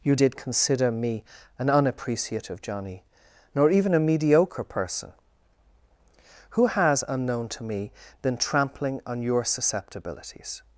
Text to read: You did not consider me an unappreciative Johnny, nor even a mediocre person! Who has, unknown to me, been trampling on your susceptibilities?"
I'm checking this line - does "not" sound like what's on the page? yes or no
no